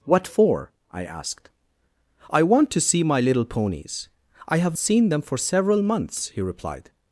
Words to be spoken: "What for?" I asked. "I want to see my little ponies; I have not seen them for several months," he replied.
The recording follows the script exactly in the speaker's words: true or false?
false